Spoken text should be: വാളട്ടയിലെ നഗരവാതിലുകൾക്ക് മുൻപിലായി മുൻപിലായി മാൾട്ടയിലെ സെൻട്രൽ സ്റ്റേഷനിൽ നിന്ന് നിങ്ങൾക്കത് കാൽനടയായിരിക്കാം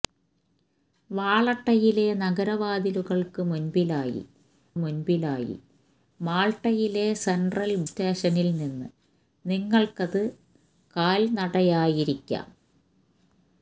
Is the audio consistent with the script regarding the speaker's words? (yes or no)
yes